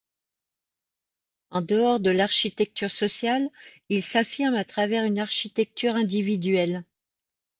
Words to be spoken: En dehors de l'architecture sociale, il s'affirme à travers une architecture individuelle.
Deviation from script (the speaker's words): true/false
false